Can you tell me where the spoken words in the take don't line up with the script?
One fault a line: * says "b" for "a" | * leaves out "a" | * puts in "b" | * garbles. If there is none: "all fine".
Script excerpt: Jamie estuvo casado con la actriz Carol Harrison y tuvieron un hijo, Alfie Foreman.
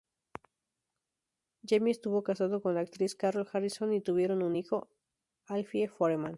all fine